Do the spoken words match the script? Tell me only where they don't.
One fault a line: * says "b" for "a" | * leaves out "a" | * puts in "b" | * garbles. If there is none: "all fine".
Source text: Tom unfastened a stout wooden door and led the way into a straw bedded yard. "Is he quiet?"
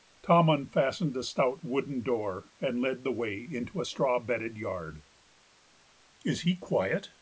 all fine